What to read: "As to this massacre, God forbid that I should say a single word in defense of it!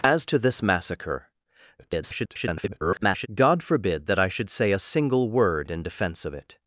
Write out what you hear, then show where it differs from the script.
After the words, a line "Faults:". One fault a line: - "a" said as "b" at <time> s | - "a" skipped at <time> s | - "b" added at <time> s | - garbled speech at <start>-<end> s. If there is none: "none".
"As to this massacre, [garbled] God forbid that I should say a single word in defense of it!
Faults:
- garbled speech at 1.8-3.3 s